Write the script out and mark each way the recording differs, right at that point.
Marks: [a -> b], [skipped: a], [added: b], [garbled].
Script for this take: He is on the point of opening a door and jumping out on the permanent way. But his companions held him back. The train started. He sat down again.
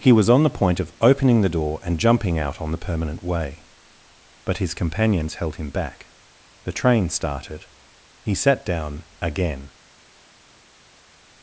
He [is -> was] on the point of opening [a -> the] door and jumping out on the permanent way. But his companions held him back. The train started. He sat down again.